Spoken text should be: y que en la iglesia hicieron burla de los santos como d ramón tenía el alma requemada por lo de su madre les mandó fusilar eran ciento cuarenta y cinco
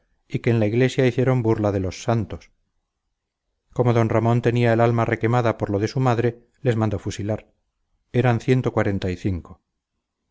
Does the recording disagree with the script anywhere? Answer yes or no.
no